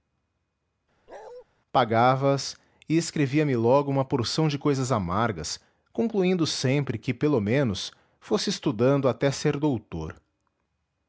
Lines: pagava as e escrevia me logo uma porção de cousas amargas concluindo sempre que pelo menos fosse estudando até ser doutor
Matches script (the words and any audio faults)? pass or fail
fail